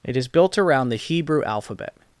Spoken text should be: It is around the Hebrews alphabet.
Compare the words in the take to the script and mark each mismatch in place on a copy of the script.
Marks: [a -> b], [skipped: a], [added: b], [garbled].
It is [added: built] around the [Hebrews -> Hebrew] alphabet.